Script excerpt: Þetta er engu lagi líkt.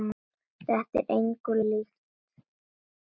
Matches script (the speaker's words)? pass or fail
fail